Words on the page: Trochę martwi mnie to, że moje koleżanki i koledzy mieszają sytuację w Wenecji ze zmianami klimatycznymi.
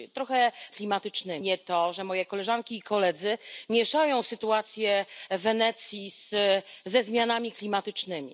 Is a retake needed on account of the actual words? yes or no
yes